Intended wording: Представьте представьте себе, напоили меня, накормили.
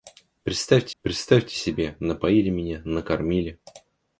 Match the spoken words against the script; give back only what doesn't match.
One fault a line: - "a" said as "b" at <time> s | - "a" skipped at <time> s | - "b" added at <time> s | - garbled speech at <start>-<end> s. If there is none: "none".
none